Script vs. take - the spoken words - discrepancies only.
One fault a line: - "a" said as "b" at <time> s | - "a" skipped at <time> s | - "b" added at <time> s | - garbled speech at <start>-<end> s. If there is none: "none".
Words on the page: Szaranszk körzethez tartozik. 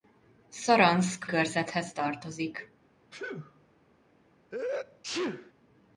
none